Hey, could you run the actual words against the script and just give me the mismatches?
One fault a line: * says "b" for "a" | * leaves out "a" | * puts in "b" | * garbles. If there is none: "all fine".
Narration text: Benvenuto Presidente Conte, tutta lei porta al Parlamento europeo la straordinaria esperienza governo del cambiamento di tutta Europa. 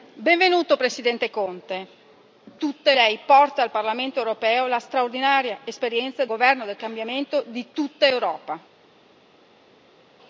all fine